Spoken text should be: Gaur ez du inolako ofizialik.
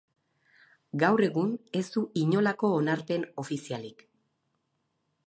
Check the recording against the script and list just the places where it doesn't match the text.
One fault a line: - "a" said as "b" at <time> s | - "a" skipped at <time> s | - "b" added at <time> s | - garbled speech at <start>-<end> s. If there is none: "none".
- "egun" added at 1.3 s
- "onarpen" added at 2.8 s